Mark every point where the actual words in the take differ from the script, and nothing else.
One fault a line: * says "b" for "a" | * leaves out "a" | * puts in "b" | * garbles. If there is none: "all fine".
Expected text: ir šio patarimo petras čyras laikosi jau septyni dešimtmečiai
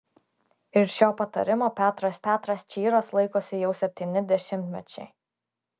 * puts in "petras"